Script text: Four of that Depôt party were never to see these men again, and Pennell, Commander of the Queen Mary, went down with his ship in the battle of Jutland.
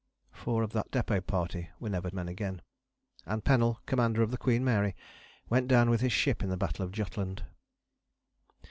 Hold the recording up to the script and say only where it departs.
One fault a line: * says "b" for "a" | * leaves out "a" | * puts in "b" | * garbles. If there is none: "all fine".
* leaves out "to see these"